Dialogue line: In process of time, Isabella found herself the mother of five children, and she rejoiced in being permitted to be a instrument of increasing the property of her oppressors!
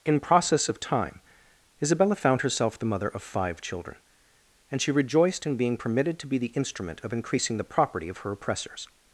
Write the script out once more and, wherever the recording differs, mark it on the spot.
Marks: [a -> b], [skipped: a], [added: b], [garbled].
In process of time, Isabella found herself the mother of five children, and she rejoiced in being permitted to be [a -> the] instrument of increasing the property of her oppressors!